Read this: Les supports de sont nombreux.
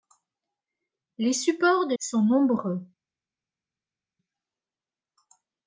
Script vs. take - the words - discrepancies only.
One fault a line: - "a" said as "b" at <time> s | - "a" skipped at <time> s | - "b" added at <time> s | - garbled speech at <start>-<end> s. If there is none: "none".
none